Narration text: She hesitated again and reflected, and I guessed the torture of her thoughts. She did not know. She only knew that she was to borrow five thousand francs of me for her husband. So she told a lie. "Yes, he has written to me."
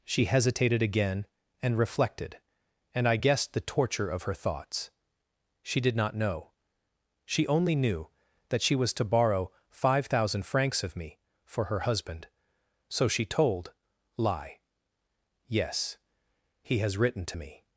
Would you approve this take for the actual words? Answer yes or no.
no